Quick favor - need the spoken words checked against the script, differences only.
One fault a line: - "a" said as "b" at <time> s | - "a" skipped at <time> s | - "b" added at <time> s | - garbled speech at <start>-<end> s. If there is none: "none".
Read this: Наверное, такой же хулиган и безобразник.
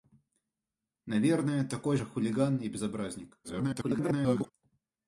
- garbled speech at 3.4-4.5 s